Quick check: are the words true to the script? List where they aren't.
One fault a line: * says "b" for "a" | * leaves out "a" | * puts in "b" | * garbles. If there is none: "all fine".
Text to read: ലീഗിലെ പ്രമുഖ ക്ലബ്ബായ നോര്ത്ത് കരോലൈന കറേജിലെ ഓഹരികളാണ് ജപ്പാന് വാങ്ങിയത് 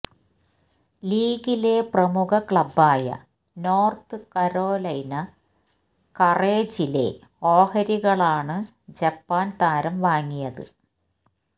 * puts in "താരം"